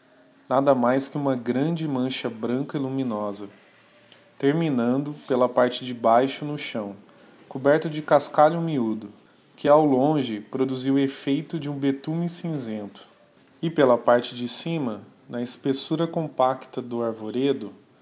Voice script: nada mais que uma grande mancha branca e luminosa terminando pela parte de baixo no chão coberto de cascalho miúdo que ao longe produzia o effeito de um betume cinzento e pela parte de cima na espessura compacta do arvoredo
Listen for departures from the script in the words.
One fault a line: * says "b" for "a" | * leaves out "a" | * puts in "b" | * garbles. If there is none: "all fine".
all fine